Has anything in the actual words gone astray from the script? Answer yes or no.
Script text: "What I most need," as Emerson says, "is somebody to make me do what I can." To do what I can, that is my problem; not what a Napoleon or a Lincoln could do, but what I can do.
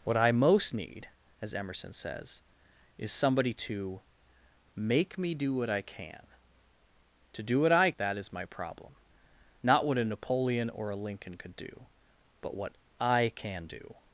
yes